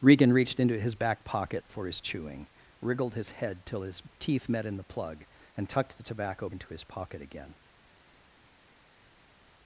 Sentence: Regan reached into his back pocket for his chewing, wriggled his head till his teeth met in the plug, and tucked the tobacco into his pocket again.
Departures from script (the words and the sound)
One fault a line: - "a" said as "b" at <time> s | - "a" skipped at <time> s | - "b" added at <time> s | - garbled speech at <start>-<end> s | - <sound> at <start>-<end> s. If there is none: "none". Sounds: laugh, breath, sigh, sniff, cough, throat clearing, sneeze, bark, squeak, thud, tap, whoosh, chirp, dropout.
none